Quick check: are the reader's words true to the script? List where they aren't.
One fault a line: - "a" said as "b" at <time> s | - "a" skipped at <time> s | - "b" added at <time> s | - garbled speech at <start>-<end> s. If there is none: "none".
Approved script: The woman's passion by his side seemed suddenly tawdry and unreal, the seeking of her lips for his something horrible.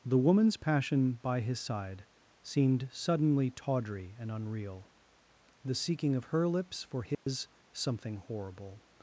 none